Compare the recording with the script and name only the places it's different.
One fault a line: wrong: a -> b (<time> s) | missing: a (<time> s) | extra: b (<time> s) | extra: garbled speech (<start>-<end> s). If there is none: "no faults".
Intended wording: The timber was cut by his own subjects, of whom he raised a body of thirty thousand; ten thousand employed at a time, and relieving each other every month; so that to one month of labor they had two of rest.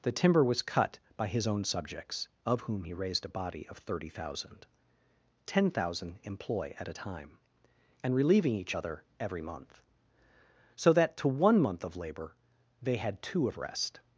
wrong: employed -> employ (6.2 s)